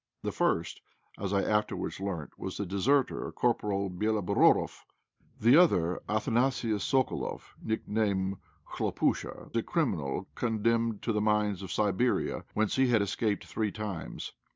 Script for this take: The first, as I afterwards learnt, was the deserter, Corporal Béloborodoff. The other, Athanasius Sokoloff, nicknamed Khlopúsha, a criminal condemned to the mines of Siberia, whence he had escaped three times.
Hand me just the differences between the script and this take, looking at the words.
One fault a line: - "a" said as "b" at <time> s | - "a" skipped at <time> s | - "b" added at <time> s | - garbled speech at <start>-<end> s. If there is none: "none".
none